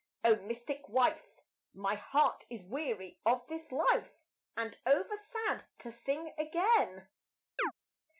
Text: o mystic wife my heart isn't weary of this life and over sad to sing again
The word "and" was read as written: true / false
true